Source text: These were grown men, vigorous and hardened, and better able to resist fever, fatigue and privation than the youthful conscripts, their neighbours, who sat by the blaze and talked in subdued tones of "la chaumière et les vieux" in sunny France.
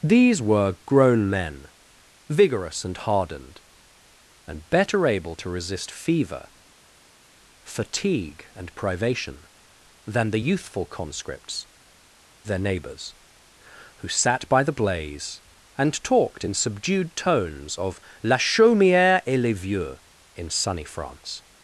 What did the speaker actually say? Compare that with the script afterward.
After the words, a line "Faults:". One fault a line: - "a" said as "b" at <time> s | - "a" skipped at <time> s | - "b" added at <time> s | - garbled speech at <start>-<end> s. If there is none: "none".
These were grown men, vigorous and hardened, and better able to resist fever, fatigue and privation than the youthful conscripts, their neighbours, who sat by the blaze and talked in subdued tones of "la chaumière et les vieux" in sunny France.
Faults:
none